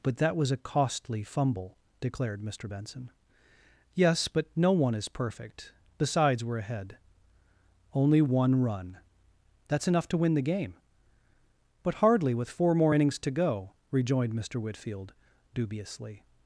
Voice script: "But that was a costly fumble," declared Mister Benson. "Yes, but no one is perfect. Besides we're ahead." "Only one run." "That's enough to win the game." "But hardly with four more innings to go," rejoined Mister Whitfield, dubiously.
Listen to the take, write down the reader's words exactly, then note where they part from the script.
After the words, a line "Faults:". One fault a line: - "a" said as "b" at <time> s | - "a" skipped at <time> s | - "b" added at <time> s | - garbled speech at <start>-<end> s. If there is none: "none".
"But that was a costly fumble," declared Mister Benson. "Yes, but no one is perfect. Besides we're ahead." "Only one run." "That's enough to win the game." "But hardly with four more innings to go," rejoined Mister Whitfield, dubiously.
Faults:
none